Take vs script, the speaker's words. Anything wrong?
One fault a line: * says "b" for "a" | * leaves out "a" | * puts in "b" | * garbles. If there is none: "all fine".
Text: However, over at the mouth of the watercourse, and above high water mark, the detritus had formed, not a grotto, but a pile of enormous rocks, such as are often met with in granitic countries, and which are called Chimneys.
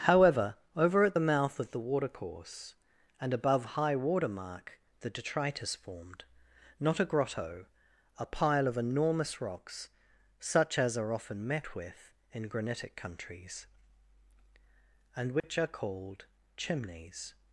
* leaves out "had"
* leaves out "but"